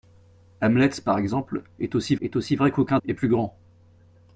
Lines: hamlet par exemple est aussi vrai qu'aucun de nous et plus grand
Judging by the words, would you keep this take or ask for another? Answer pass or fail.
fail